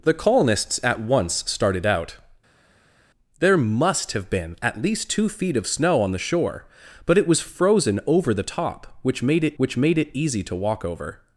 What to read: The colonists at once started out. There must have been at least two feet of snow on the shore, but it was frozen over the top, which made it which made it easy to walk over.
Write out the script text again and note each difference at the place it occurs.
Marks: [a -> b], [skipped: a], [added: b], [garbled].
The colonists at once started out. There must have been at least two feet of snow on the shore, but it was frozen over the top, which made it which made it easy to walk over.